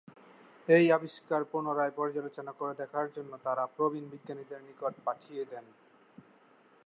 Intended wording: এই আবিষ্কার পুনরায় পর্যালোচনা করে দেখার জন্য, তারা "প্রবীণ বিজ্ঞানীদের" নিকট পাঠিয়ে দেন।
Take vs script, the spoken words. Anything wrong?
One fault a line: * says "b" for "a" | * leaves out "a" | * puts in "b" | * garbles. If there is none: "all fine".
all fine